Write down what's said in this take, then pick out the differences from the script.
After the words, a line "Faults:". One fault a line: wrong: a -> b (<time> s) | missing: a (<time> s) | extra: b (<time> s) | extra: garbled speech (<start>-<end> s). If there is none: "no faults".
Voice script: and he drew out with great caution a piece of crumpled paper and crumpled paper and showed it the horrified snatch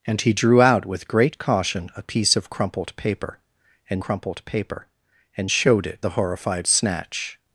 and he drew out with great caution a piece of crumpled paper and crumpled paper and showed it the horrified snatch
Faults:
no faults